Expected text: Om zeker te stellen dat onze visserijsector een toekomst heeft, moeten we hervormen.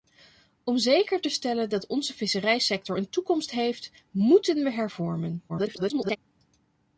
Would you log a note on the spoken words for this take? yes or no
yes